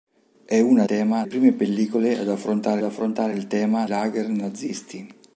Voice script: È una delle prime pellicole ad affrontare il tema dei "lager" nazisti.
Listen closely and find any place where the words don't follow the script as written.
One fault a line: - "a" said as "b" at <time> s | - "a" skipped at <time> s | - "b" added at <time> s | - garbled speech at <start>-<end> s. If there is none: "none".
- "delle" said as "tema" at 0.8 s
- "affrontare" added at 2.8 s
- "dei" skipped at 3.9 s